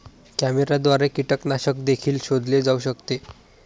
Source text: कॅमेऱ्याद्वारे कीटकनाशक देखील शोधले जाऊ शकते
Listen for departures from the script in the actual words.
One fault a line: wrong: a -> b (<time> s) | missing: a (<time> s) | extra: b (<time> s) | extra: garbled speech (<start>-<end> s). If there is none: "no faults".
no faults